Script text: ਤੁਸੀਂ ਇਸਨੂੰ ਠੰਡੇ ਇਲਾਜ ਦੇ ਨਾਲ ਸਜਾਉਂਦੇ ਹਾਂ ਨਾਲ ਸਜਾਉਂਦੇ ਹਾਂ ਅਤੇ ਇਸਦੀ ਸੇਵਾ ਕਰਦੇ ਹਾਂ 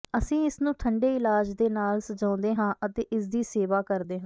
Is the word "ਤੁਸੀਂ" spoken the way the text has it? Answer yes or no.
no